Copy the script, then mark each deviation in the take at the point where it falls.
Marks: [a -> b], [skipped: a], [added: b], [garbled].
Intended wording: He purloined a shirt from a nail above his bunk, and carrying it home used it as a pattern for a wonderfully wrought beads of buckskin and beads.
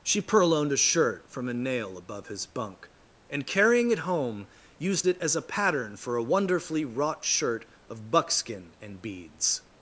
[He -> She] purloined a shirt from a nail above his bunk, and carrying it home used it as a pattern for a wonderfully wrought [beads -> shirt] of buckskin and beads.